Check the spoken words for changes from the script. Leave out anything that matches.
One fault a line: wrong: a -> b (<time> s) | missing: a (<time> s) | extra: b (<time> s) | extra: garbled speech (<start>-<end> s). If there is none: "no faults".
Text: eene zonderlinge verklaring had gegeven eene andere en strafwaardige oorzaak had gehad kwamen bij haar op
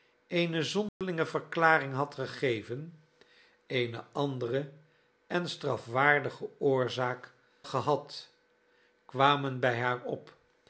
missing: had (7.3 s)